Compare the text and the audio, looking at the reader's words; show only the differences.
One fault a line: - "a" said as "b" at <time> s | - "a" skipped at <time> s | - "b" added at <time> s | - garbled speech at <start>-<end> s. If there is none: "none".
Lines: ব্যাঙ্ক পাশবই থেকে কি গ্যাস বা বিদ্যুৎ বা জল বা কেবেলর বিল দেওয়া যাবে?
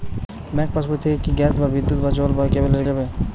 - "বিল দেওয়া" skipped at 2.9 s